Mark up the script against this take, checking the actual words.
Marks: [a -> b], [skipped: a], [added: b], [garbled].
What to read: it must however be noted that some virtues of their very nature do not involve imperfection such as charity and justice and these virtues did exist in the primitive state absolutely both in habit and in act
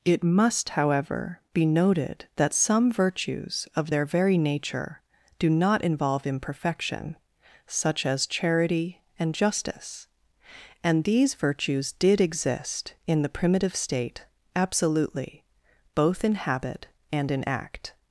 it must however be noted that some virtues of their very nature do not involve imperfection such as charity and justice and these virtues did exist in the primitive state absolutely both in habit and in act